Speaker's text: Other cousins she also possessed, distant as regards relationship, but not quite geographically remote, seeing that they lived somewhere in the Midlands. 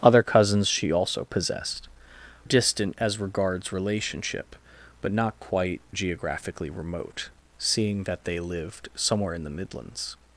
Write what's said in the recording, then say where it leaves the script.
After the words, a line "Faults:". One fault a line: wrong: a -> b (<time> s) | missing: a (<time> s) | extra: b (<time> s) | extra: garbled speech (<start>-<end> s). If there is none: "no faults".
Other cousins she also possessed, distant as regards relationship, but not quite geographically remote, seeing that they lived somewhere in the Midlands.
Faults:
no faults